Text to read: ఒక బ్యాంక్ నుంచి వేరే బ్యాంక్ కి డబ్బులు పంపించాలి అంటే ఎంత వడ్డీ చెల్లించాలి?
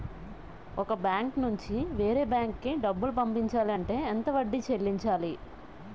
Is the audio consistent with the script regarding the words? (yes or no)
yes